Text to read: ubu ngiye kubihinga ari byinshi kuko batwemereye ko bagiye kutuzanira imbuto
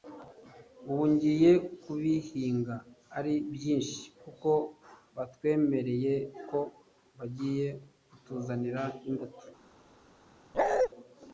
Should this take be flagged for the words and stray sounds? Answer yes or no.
yes